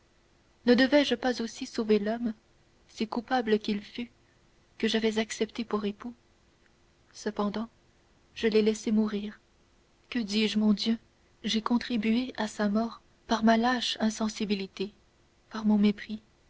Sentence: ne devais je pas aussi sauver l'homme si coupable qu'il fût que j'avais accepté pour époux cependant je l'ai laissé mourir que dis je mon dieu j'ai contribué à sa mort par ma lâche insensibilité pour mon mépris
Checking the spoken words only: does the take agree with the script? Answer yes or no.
no